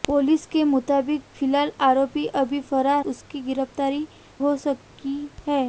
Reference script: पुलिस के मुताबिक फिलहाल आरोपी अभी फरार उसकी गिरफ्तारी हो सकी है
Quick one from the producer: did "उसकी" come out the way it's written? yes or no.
yes